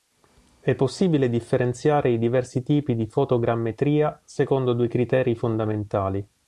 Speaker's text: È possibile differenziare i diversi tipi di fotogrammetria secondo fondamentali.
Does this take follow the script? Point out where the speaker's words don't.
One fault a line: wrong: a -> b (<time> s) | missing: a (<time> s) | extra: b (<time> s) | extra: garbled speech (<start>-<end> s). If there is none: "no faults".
extra: due criteri (4.7 s)